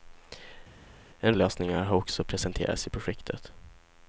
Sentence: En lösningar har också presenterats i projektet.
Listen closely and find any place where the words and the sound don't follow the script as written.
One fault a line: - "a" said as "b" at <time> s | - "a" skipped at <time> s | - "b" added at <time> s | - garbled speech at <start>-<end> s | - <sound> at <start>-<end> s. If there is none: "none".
none